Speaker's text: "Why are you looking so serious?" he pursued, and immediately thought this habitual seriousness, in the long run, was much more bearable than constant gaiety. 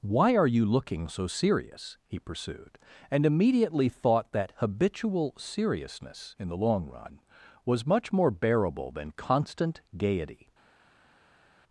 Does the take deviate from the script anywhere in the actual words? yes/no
yes